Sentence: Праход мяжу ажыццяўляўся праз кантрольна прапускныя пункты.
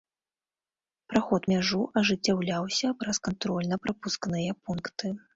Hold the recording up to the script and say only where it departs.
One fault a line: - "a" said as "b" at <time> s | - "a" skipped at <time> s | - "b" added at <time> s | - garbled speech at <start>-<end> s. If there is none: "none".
none